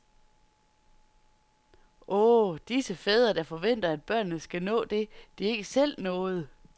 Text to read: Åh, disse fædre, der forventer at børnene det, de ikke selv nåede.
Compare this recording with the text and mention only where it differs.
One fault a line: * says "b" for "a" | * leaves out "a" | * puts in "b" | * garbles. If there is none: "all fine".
* puts in "skal nå"